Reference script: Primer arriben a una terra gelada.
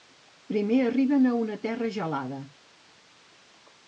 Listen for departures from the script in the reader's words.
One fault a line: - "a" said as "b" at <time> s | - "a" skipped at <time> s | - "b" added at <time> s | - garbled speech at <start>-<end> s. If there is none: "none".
none